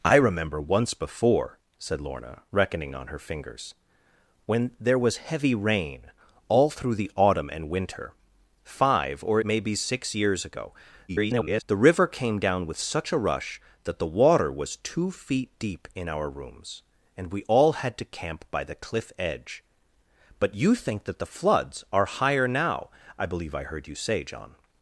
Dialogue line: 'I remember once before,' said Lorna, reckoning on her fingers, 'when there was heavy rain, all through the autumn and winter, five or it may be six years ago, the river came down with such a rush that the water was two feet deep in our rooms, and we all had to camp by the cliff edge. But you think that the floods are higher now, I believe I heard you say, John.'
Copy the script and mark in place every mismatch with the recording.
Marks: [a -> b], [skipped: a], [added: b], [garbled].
'I remember once before,' said Lorna, reckoning on her fingers, 'when there was heavy rain, all through the autumn and winter, five or [skipped: it] may be six years ago, [garbled] the river came down with such a rush that the water was two feet deep in our rooms, and we all had to camp by the cliff edge. But you think that the floods are higher now, I believe I heard you say, John.'